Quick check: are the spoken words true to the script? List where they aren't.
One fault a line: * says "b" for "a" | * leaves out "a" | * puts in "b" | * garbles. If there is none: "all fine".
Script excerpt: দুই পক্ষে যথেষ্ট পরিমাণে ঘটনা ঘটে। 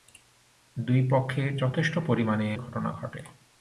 all fine